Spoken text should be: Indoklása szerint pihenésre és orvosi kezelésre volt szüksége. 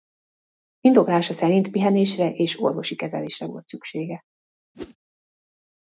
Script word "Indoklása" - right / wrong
right